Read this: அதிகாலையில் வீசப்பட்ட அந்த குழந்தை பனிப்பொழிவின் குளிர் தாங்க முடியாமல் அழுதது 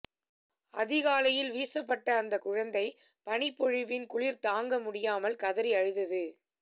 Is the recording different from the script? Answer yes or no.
yes